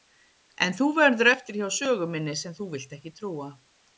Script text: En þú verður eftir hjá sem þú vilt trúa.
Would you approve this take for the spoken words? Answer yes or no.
no